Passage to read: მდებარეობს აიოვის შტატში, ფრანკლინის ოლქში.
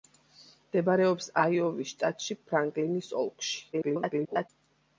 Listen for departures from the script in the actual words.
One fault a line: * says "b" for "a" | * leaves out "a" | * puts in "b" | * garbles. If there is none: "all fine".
* garbles